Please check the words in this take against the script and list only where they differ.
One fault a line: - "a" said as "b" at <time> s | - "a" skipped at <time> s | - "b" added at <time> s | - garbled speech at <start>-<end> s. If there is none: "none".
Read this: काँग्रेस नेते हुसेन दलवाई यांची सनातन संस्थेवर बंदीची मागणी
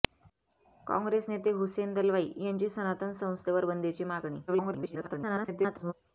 - garbled speech at 4.5-5.9 s